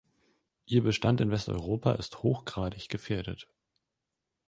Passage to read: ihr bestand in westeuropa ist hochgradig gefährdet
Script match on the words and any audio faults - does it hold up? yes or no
yes